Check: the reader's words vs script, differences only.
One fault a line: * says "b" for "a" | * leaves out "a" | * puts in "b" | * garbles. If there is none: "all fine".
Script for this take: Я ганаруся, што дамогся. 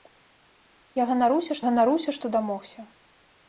* puts in "ганаруся"